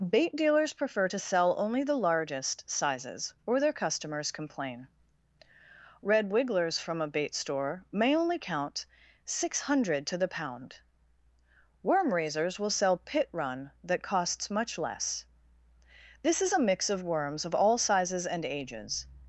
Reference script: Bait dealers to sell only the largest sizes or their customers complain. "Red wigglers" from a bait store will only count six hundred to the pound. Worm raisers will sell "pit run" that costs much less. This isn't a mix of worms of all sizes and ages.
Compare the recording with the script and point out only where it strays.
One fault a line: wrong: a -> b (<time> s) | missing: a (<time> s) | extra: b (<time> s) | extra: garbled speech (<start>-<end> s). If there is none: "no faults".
extra: prefer (0.7 s)
wrong: will -> may (7.9 s)
wrong: isn't -> is (16.4 s)